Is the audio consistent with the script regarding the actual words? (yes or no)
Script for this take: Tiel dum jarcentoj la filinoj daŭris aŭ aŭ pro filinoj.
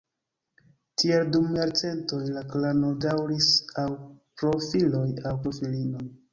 no